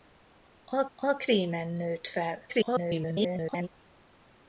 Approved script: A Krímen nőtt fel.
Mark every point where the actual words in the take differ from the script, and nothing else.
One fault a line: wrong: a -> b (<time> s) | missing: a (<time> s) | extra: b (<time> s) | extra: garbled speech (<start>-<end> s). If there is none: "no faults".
extra: a (1.0 s)
extra: garbled speech (2.5-3.7 s)